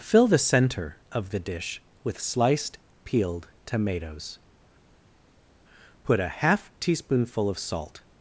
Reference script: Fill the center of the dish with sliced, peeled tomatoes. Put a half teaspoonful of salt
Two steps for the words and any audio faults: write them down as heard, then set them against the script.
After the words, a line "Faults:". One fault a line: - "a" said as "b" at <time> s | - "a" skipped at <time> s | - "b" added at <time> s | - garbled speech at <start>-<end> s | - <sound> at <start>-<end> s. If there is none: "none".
Fill the center of the dish with sliced, peeled tomatoes. Put a half teaspoonful of salt
Faults:
none